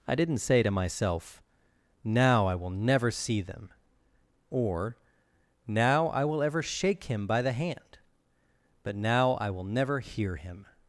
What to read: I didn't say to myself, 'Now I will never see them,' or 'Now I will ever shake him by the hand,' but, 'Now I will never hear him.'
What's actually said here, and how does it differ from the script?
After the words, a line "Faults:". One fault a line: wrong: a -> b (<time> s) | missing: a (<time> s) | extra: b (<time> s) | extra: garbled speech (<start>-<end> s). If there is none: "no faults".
I didn't say to myself, 'Now I will never see them,' or 'Now I will ever shake him by the hand,' but, 'Now I will never hear him.'
Faults:
no faults